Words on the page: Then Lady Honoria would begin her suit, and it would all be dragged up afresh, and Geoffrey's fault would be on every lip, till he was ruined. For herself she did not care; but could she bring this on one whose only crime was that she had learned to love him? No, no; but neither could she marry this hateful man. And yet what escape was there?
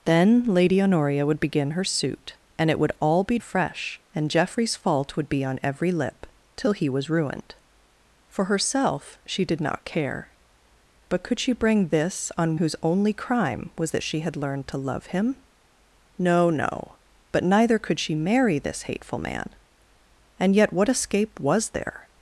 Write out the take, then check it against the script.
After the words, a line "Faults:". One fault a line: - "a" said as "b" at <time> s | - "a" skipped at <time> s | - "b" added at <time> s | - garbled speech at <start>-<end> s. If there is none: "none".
Then Lady Honoria would begin her suit, and it would all be afresh, and Geoffrey's fault would be on every lip, till he was ruined. For herself she did not care; but could she bring this on whose only crime was that she had learned to love him? No, no; but neither could she marry this hateful man. And yet what escape was there?
Faults:
- "dragged up" skipped at 3.4 s
- "one" skipped at 12.6 s